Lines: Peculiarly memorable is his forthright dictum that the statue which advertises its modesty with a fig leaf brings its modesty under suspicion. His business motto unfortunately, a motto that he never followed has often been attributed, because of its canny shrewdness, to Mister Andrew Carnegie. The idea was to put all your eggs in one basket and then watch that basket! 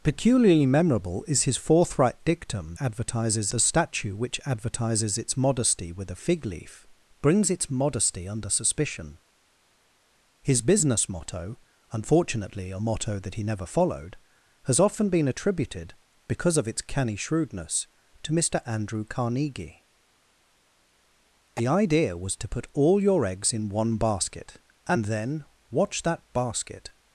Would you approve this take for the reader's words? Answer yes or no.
no